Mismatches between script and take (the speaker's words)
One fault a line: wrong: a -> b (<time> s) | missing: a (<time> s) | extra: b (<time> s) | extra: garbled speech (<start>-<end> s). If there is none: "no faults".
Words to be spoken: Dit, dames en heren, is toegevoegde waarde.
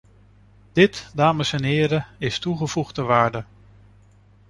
no faults